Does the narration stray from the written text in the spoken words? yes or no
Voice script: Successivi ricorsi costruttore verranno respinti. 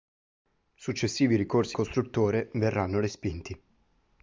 no